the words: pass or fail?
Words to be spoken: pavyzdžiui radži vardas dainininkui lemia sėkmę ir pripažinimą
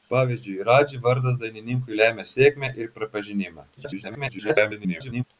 fail